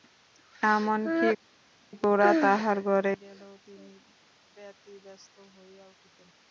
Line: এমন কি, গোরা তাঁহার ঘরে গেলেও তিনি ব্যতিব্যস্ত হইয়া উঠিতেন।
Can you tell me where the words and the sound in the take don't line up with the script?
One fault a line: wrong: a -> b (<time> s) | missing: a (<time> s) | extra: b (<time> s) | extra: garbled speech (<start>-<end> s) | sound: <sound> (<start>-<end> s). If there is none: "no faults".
no faults